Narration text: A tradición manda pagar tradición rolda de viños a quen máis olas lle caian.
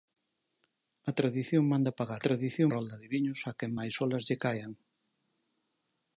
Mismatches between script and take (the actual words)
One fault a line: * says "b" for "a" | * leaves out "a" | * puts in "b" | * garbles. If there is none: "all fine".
all fine